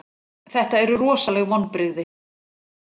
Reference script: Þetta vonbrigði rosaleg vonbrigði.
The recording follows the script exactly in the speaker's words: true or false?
false